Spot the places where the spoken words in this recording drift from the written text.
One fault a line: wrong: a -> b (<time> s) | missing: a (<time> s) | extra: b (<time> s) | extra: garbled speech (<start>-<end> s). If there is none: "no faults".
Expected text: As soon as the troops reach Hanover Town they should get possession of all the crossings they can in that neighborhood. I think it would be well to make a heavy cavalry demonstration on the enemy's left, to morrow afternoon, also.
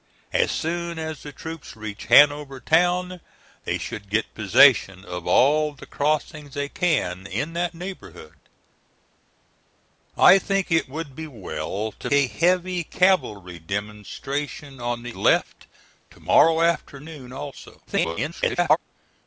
missing: make (12.1 s)
missing: enemy's (15.2 s)
extra: garbled speech (17.9-18.8 s)